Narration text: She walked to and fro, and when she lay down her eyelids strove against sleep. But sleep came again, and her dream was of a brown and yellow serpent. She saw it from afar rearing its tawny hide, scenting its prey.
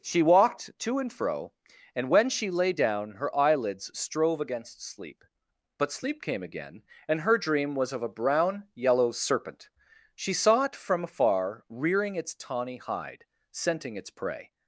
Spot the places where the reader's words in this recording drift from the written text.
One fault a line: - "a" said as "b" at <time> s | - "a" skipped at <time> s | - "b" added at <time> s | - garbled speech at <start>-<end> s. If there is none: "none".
- "and" skipped at 8.7 s